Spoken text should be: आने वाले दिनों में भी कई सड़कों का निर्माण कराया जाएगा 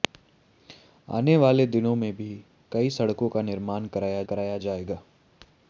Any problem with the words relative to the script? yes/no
yes